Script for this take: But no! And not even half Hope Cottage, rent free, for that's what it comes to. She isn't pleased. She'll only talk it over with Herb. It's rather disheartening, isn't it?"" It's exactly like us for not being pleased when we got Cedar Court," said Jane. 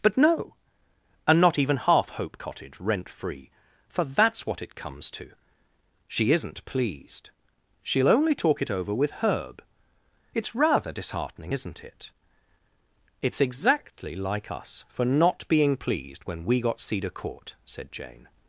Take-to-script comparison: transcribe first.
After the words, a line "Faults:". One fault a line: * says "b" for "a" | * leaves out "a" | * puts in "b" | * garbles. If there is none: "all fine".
But no! And not even half Hope Cottage, rent free, for that's what it comes to. She isn't pleased. She'll only talk it over with Herb. It's rather disheartening, isn't it?"" It's exactly like us for not being pleased when we got Cedar Court," said Jane.
Faults:
all fine